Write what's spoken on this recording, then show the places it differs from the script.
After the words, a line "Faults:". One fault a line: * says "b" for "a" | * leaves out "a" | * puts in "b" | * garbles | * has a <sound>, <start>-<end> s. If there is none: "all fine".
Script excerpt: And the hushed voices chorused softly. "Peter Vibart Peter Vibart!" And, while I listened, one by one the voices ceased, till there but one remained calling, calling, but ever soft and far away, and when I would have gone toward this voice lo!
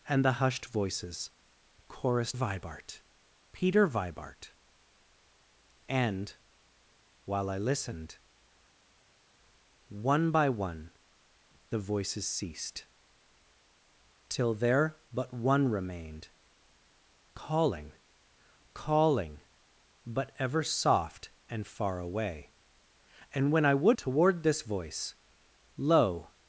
And the hushed voices chorused Vibart Peter Vibart!" And, while I listened, one by one the voices ceased, till there but one remained calling, calling, but ever soft and far away, and when I would toward this voice lo!
Faults:
* leaves out "softly Peter"
* leaves out "have gone"